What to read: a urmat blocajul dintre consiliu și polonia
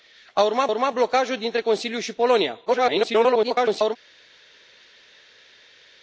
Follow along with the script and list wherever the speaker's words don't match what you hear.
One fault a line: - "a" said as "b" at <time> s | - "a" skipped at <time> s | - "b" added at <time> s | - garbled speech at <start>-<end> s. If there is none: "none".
- "urmat" added at 0.7 s
- garbled speech at 2.7-4.0 s